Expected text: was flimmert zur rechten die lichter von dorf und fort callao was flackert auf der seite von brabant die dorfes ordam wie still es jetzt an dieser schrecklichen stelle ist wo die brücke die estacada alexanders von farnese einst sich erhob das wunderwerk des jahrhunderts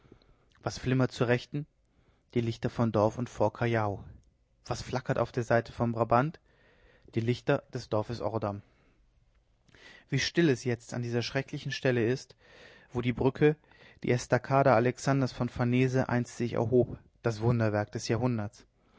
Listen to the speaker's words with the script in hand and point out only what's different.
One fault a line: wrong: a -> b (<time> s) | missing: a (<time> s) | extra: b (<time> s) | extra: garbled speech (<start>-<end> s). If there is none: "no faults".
extra: lichter des (7.2 s)